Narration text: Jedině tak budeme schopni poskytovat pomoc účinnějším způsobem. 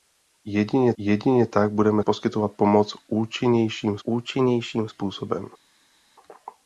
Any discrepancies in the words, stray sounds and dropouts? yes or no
yes